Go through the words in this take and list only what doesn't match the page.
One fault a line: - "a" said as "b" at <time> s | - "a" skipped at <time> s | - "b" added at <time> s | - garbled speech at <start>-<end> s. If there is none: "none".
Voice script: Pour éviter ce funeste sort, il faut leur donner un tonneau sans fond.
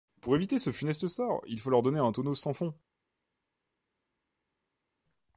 none